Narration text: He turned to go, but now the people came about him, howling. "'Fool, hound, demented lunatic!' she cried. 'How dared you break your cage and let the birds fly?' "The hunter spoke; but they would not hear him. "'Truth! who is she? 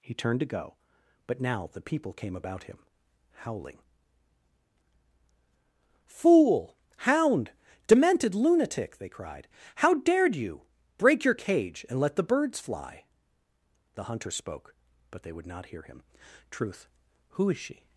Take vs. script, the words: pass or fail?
fail